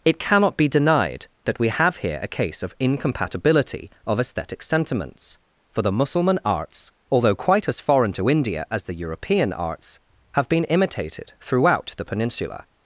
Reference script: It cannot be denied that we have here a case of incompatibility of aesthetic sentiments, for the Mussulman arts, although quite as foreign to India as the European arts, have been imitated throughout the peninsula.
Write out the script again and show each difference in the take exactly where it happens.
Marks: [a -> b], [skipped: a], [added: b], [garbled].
It cannot be denied that we have here a case of incompatibility of aesthetic sentiments, for the Mussulman arts, although quite as foreign to India as the European arts, have been imitated throughout the peninsula.